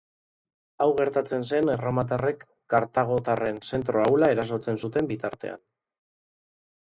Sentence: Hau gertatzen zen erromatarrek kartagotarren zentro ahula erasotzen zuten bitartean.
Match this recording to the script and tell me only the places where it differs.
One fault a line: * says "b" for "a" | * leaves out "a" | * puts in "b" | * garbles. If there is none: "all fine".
all fine